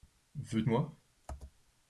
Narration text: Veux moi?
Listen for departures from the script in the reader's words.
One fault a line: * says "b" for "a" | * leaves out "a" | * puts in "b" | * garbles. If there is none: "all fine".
all fine